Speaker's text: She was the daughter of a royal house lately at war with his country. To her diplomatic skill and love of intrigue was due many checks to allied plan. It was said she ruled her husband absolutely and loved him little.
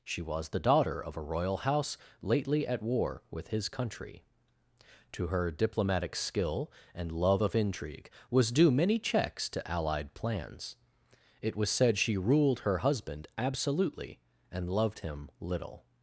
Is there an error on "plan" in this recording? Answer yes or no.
yes